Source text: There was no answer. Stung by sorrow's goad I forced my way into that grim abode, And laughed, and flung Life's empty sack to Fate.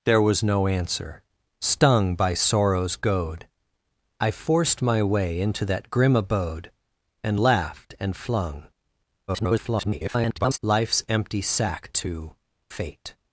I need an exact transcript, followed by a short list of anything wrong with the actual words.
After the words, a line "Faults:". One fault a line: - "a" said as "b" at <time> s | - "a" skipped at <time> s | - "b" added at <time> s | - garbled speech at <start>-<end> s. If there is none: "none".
There was no answer. Stung by sorrow's goad I forced my way into that grim abode, And laughed, and flung [garbled] Life's empty sack to Fate.
Faults:
- garbled speech at 9.3-10.6 s